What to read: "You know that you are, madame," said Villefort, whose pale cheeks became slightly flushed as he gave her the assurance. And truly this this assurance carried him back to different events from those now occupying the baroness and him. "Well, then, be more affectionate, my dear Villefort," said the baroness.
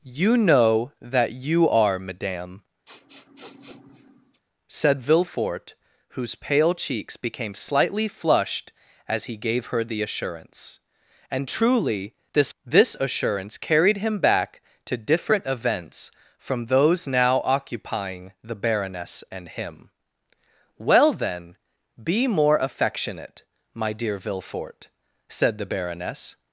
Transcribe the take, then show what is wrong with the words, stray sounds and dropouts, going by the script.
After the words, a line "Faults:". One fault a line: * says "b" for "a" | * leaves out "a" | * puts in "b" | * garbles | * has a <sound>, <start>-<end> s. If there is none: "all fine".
"You know that you are, madame," said Villefort, whose pale cheeks became slightly flushed as he gave her the assurance. And truly this this assurance carried him back to different events from those now occupying the baroness and him. "Well, then, be more affectionate, my dear Villefort," said the baroness.
Faults:
* has a sniff, 2.9-4.4 s